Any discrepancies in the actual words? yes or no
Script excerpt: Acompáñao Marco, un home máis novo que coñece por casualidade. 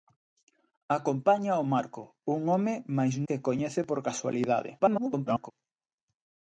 yes